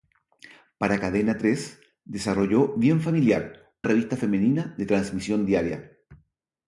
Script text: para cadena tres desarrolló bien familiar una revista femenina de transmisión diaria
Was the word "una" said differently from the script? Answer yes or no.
yes